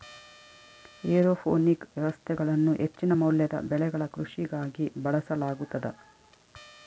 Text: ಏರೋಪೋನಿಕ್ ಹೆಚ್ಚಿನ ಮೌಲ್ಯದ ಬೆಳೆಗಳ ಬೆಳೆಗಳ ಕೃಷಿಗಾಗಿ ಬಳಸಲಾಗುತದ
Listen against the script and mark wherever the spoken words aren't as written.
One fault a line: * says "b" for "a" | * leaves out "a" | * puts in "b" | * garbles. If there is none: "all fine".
* puts in "ವ್ಯವಸ್ಥೆಗಳನ್ನು"
* leaves out "ಬೆಳೆಗಳ"